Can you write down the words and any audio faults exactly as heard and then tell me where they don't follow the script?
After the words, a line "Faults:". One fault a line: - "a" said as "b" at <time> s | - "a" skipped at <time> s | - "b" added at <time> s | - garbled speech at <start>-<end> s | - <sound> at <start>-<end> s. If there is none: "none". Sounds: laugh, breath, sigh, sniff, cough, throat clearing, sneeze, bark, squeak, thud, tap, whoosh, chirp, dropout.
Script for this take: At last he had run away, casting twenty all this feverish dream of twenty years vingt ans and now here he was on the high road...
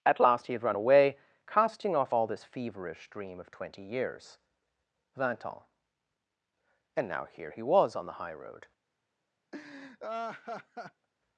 At last he had run away, casting off all this feverish dream of twenty years vingt ans and now here he was on the high road...
Faults:
- "twenty" said as "off" at 2.0 s
- laugh at 9.5-11.1 s